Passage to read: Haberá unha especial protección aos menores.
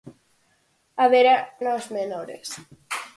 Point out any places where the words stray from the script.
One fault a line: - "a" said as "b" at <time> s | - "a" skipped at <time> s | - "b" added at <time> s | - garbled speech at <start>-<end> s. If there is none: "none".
- "unha especial protección" skipped at 1.4 s